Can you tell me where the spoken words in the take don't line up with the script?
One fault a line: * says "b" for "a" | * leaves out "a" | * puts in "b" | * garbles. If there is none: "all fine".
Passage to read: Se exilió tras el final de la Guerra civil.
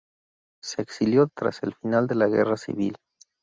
all fine